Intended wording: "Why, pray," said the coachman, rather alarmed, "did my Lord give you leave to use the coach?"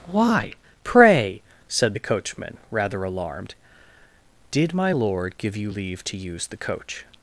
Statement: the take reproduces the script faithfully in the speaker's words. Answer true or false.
true